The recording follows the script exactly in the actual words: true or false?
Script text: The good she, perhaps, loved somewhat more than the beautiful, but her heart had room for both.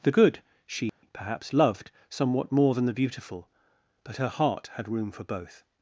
true